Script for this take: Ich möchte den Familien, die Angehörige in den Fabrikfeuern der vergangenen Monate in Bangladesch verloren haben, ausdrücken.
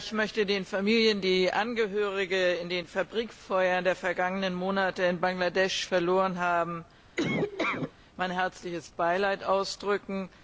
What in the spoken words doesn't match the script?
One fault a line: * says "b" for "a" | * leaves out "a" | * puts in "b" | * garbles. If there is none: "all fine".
* puts in "mein herzliches Beileid"